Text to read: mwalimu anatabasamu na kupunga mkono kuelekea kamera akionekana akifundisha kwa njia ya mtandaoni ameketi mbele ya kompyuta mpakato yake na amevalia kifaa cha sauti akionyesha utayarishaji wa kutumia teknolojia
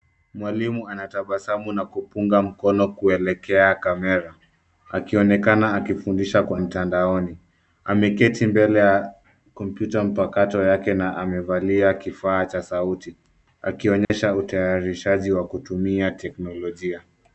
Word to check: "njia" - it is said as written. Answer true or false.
false